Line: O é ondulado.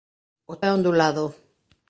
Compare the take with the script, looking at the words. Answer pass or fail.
pass